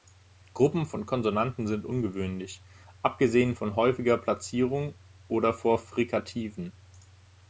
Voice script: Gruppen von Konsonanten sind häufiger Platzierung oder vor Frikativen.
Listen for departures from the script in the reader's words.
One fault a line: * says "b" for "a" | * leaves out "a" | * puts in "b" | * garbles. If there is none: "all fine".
* puts in "ungewöhnlich abgesehen von"